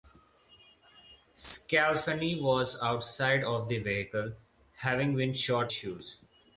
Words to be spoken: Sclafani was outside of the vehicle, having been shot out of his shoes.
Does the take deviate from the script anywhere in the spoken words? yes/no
yes